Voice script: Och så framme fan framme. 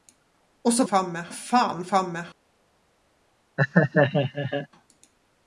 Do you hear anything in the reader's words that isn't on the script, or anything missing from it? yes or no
no